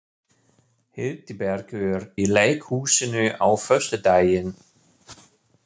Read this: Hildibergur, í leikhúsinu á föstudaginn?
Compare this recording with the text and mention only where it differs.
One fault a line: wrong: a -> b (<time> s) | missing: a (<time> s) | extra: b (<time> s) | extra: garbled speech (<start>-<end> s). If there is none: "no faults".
no faults